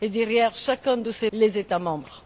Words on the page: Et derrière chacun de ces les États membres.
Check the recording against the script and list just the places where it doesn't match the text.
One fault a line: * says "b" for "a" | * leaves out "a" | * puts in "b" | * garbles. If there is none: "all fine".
all fine